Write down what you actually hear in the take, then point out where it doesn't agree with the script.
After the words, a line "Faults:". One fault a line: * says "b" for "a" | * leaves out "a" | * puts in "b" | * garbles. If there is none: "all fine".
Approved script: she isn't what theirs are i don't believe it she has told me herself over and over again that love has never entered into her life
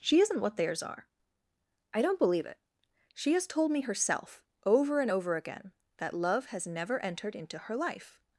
she isn't what theirs are i don't believe it she has told me herself over and over again that love has never entered into her life
Faults:
all fine